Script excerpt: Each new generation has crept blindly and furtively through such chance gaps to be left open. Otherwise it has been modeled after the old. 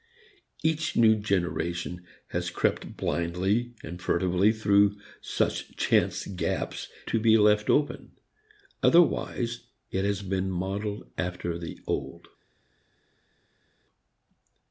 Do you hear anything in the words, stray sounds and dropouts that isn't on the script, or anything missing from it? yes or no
no